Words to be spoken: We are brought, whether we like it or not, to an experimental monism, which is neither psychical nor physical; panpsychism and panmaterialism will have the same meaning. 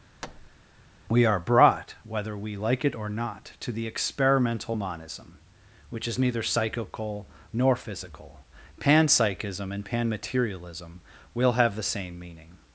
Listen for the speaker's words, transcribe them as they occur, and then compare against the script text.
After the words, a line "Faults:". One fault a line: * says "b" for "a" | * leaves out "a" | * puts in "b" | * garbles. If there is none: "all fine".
We are brought, whether we like it or not, to the experimental monism, which is neither psychical nor physical; panpsychism and panmaterialism will have the same meaning.
Faults:
* says "the" for "an"